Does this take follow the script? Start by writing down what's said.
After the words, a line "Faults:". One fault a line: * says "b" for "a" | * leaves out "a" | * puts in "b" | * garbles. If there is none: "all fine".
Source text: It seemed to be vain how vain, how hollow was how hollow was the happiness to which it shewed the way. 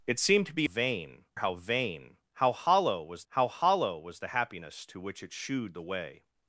It seemed to be vain how vain, how hollow was how hollow was the happiness to which it shewed the way.
Faults:
all fine